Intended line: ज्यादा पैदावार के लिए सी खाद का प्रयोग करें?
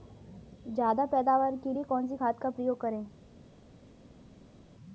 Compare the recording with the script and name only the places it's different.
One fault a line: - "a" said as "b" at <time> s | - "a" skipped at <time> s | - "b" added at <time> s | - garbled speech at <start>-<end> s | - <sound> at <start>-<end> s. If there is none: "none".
- "कौन" added at 1.9 s